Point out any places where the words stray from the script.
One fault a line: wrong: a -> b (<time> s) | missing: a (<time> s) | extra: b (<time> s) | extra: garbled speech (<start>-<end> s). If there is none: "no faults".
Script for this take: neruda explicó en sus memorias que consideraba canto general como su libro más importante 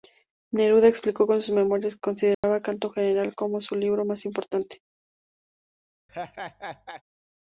no faults